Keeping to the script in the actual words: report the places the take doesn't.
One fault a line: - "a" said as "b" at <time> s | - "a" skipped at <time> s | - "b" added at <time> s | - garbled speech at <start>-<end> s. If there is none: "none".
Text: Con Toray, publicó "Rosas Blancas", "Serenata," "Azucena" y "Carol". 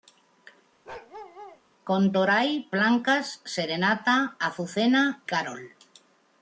- "publicó Rosas" skipped at 2.7 s
- "y" skipped at 5.2 s